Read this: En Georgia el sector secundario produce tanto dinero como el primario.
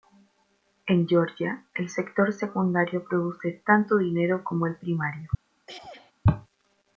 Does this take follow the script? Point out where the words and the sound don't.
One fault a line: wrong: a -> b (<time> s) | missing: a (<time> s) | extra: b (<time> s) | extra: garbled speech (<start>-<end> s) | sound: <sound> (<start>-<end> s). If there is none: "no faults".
sound: throat clearing (5.7-6.1 s)